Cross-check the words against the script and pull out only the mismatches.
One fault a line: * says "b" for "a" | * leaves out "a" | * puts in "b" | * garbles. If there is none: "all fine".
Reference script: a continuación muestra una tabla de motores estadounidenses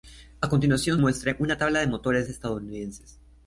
all fine